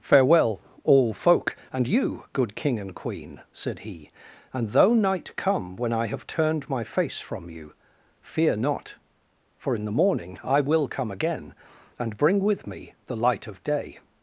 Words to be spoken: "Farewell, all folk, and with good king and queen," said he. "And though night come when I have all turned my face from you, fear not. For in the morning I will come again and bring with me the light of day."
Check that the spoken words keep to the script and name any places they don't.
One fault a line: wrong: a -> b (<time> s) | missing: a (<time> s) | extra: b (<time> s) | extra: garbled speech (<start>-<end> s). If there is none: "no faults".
wrong: with -> you (1.8 s)
missing: all (6.2 s)